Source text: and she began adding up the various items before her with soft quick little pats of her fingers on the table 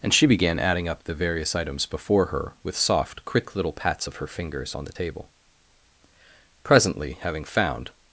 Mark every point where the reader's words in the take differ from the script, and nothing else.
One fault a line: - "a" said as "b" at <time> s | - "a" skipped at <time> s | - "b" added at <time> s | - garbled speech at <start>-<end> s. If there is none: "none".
- "presently having found" added at 6.6 s